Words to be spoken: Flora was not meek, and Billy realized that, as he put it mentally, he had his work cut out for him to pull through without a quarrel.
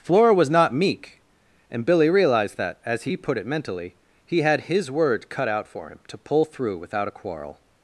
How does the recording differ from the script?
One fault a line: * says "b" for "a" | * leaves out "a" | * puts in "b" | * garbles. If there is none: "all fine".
* says "word" for "work"